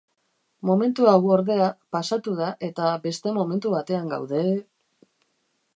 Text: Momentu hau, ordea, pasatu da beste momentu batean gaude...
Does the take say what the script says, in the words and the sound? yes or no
no